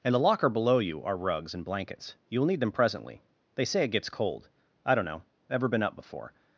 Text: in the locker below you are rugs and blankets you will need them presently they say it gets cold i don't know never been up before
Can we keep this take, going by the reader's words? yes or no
no